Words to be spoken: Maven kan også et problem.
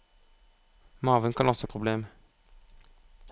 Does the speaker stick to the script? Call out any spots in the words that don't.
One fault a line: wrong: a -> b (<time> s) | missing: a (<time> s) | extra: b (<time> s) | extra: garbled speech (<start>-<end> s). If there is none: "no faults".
no faults